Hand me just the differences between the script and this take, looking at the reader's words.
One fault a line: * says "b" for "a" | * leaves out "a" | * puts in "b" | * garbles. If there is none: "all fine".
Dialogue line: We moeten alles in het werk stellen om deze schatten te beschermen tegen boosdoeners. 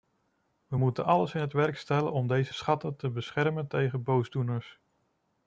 all fine